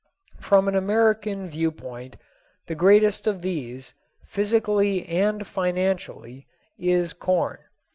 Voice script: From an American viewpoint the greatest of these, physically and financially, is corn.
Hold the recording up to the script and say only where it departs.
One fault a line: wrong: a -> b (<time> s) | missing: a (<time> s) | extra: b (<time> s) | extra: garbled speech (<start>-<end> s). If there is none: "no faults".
no faults